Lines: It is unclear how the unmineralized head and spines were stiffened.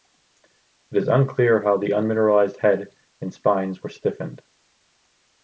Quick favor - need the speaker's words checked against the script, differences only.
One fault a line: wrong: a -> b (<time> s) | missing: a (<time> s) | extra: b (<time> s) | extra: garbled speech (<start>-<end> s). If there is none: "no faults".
no faults